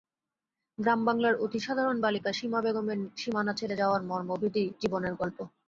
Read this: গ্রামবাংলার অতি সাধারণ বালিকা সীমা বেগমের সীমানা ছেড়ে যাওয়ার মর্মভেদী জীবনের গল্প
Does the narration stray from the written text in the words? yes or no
no